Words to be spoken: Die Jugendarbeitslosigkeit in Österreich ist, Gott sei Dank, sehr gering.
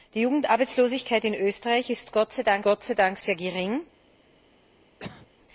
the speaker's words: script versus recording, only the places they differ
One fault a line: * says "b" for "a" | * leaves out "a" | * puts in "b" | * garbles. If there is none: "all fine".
* puts in "Gott sei Dank"